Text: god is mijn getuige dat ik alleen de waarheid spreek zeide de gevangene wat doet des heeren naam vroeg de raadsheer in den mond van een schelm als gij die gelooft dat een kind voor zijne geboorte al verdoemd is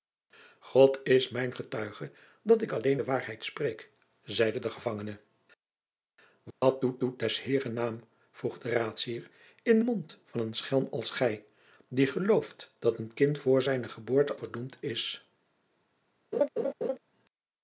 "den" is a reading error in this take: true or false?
true